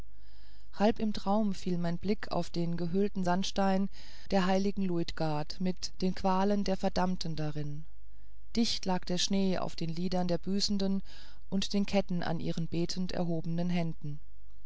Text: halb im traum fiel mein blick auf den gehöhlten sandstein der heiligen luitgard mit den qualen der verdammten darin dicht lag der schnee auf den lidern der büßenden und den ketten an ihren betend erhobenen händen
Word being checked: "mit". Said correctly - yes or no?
yes